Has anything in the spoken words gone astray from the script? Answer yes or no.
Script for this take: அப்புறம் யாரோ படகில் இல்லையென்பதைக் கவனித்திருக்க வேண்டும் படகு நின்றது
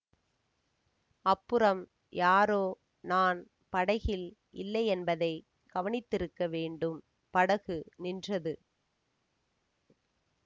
yes